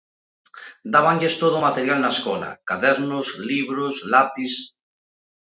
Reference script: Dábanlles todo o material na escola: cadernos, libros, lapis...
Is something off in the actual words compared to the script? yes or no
no